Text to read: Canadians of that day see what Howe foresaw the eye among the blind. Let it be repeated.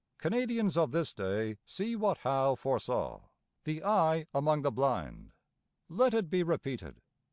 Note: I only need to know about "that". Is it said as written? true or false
false